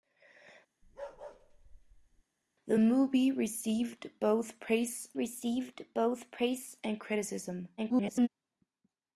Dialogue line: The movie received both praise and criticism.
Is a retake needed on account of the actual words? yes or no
yes